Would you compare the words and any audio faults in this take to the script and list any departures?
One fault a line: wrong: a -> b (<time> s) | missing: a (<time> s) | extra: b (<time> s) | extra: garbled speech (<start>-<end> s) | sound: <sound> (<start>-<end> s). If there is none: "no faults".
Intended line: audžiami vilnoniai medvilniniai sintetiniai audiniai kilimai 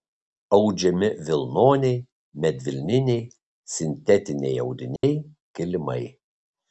sound: dropout (5.0-5.0 s)